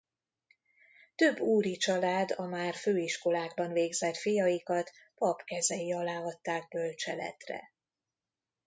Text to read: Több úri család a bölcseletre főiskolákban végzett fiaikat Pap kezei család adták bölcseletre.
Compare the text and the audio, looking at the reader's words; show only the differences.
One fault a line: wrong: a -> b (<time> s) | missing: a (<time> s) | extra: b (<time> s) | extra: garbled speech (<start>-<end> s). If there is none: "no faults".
wrong: bölcseletre -> már (2.5 s)
wrong: család -> alá (5.9 s)